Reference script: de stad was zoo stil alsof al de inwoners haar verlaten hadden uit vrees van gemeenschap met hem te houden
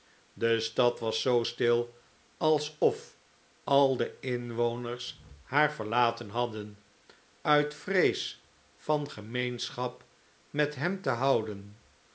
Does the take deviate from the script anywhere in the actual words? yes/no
no